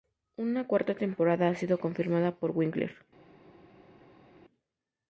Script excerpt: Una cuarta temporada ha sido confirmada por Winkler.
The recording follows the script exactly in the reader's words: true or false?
true